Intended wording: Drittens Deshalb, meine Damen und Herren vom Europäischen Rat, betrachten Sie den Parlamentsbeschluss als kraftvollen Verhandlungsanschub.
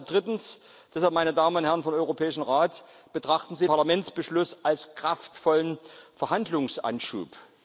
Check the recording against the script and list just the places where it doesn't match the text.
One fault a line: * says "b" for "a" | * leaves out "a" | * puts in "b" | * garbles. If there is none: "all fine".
* leaves out "den"